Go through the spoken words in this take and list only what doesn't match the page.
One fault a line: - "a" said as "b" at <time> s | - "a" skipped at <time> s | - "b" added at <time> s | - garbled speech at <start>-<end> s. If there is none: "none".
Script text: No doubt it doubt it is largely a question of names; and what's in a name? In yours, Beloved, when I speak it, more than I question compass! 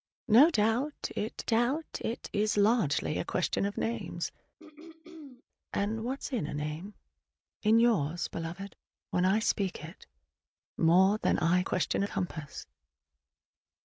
none